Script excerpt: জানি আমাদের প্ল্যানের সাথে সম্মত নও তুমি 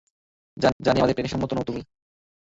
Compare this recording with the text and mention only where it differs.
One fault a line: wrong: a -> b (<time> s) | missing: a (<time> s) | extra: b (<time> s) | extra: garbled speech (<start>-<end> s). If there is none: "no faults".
extra: জানি (0.8 s)
missing: সাথে (1.3 s)